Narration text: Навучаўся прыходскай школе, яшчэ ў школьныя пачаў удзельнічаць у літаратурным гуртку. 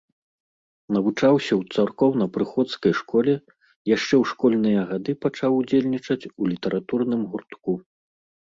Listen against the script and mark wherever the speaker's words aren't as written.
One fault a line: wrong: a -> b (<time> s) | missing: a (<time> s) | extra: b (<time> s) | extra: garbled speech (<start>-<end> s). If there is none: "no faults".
extra: ў царкоўна (1.6 s)
extra: гады (4.9 s)